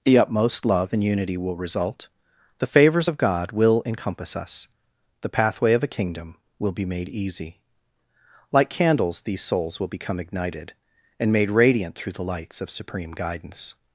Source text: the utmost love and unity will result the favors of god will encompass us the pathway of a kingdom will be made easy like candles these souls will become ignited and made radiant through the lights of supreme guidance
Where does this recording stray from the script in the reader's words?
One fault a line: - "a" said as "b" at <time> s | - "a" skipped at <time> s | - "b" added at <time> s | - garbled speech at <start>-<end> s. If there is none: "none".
none